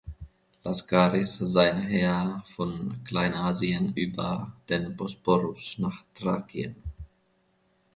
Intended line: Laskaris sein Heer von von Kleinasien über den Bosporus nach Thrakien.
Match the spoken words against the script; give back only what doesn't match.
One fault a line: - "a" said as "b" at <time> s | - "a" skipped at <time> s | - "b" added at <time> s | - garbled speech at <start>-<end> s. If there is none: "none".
- "von" skipped at 3.0 s